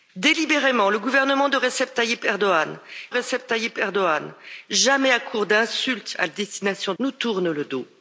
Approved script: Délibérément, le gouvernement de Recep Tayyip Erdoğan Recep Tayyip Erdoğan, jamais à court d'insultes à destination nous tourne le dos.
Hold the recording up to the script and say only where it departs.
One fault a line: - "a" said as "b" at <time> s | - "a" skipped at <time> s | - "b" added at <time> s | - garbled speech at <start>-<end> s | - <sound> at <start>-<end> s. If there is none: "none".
none